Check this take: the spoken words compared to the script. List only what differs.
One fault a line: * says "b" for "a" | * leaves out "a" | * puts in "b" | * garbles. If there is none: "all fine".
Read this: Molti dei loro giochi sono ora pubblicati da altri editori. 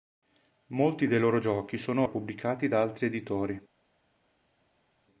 * leaves out "ora"